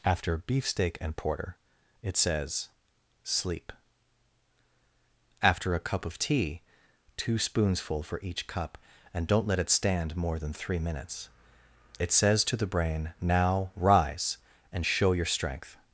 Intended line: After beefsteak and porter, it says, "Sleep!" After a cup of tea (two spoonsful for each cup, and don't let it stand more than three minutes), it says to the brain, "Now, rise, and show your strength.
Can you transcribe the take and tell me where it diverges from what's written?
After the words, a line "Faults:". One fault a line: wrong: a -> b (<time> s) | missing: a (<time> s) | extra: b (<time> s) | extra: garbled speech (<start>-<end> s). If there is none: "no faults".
After beefsteak and porter, it says, "Sleep!" After a cup of tea (two spoonsful for each cup, and don't let it stand more than three minutes), it says to the brain, "Now, rise, and show your strength.
Faults:
no faults